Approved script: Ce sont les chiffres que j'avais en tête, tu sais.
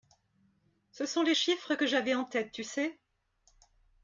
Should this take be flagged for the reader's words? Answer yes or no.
no